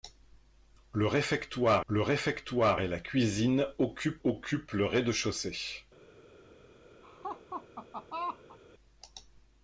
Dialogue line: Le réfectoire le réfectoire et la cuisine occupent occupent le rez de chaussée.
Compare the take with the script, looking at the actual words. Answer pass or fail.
pass